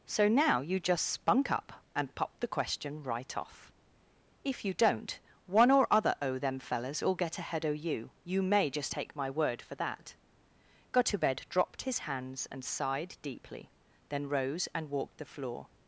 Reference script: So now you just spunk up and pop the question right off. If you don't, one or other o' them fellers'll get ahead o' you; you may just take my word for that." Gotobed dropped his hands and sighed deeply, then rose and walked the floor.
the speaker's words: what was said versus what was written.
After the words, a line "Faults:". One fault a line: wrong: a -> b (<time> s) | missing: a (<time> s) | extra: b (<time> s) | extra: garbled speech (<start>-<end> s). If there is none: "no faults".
So now you just spunk up and pop the question right off. If you don't, one or other o' them fellers'll get ahead o' you; you may just take my word for that." Gotobed dropped his hands and sighed deeply, then rose and walked the floor.
Faults:
no faults